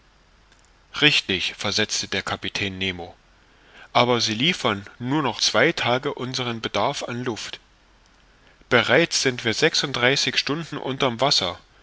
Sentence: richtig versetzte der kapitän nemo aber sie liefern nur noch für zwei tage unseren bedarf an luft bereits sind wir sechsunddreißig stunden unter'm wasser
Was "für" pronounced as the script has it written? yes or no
no